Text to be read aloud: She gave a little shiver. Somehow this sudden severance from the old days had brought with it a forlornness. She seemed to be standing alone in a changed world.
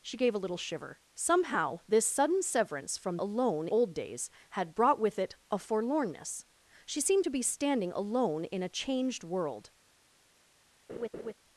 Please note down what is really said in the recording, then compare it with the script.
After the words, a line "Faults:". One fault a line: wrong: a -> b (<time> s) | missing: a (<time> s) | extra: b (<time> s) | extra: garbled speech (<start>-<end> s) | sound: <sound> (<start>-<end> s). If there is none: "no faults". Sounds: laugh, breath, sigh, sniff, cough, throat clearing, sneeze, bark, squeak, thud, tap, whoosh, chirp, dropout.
She gave a little shiver. Somehow this sudden severance from alone old days had brought with it a forlornness. She seemed to be standing alone in a changed world.
Faults:
wrong: the -> alone (3.2 s)
sound: laugh (10.9-11.3 s)